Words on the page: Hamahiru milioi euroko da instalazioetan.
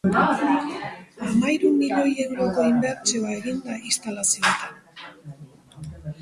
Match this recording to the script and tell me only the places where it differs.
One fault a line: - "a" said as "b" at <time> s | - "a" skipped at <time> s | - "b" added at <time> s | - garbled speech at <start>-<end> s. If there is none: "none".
- "inbertsioa egin" added at 2.7 s